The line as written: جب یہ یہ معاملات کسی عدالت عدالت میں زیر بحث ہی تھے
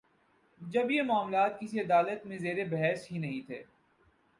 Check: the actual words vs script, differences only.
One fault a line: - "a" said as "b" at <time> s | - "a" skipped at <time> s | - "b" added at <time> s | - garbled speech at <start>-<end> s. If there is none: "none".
- "یہ" skipped at 1.0 s
- "عدالت" skipped at 2.3 s
- "نہیں" added at 3.2 s